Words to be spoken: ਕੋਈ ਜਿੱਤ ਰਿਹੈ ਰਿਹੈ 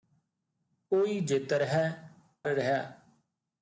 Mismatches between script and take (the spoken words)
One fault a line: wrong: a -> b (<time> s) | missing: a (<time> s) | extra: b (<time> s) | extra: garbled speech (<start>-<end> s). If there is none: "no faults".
no faults